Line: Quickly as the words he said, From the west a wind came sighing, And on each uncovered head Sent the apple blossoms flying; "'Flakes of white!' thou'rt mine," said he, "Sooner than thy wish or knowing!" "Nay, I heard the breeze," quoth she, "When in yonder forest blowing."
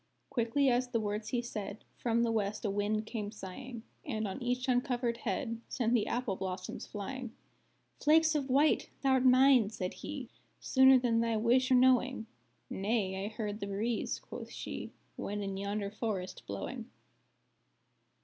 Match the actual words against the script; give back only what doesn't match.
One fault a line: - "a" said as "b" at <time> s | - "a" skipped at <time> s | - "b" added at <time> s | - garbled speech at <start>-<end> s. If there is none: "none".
none